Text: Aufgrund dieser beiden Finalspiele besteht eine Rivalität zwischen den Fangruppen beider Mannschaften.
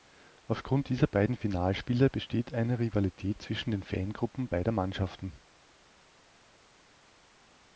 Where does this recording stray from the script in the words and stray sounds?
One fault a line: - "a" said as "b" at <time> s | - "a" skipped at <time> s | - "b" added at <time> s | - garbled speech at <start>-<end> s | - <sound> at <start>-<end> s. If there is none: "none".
none